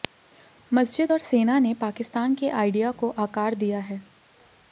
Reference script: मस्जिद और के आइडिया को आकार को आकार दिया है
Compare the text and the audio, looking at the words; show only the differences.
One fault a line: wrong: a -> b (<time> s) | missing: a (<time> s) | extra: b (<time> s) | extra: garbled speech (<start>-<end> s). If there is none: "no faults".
extra: सेना ने पाकिस्तान (1.2 s)
missing: को आकार (3.5 s)